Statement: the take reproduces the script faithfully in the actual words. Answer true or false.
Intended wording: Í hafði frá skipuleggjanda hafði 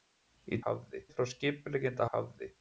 true